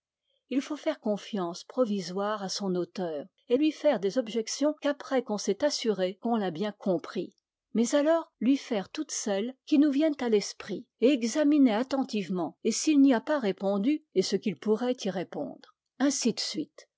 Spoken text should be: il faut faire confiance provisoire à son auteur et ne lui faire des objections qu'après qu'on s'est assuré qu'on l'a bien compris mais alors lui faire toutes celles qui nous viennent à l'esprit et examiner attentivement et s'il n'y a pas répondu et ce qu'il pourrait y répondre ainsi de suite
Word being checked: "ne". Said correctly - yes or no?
no